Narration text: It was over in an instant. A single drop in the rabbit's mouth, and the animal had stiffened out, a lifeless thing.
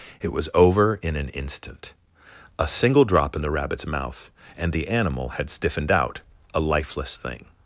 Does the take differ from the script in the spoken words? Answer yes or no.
no